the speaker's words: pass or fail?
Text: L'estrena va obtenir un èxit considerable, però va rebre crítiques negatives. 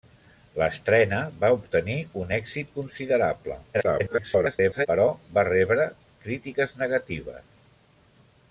fail